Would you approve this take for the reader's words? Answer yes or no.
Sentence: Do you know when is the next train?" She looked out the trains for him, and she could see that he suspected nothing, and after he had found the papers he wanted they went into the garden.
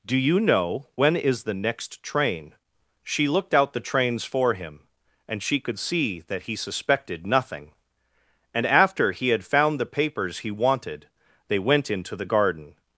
yes